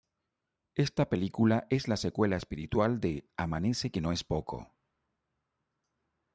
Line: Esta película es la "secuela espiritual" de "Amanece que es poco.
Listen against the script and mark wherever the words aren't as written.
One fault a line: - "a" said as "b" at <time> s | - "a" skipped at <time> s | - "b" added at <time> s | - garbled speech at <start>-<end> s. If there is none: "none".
- "no" added at 4.0 s